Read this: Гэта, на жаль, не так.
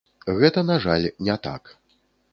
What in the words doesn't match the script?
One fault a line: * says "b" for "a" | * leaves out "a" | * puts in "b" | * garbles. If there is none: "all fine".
all fine